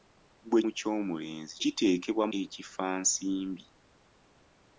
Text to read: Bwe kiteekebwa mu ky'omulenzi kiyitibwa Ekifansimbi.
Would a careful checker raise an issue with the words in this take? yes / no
yes